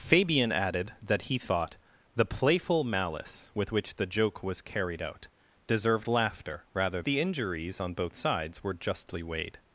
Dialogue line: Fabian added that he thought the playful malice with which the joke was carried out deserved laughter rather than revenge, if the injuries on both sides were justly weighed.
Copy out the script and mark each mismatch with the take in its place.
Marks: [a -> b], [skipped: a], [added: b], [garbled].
Fabian added that he thought the playful malice with which the joke was carried out deserved laughter rather [skipped: than revenge, if] the injuries on both sides were justly weighed.